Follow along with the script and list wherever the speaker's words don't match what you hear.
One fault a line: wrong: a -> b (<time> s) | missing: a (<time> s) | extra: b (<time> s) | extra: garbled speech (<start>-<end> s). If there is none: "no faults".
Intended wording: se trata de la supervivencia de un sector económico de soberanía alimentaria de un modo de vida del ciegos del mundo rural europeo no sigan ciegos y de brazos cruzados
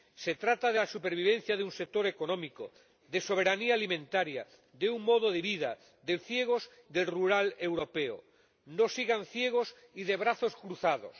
no faults